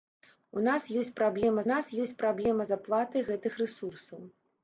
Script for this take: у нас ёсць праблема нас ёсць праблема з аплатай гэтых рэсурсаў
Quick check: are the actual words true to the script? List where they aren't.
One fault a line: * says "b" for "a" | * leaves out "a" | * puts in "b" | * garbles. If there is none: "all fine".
all fine